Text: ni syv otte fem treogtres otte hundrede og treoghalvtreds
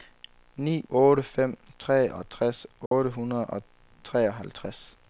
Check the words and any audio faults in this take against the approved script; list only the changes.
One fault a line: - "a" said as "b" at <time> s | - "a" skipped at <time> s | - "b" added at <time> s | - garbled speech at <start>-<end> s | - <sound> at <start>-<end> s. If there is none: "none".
- "syv" skipped at 0.8 s
- dropout at 2.9-2.9 s